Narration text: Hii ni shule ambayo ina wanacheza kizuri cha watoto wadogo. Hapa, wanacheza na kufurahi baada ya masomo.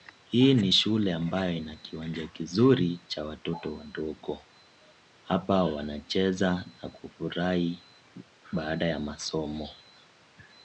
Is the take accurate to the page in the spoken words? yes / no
no